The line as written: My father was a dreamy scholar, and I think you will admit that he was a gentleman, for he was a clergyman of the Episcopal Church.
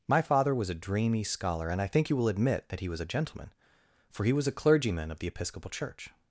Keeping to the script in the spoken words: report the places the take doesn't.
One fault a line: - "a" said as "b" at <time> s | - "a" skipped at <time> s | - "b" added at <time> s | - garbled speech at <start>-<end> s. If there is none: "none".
none